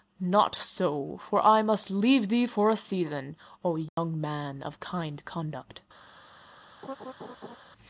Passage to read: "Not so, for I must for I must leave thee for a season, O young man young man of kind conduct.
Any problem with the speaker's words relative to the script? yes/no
yes